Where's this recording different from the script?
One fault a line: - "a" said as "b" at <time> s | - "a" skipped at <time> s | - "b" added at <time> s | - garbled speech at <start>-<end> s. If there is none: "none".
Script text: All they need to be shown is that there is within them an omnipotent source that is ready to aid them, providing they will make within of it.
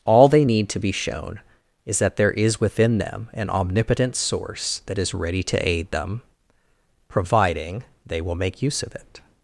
- "within" said as "use" at 8.6 s